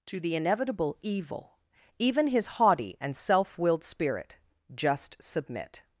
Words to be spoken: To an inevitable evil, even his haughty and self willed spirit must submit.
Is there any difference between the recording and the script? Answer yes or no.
yes